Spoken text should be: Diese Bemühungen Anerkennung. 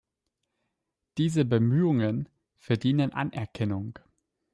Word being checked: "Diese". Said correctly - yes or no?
yes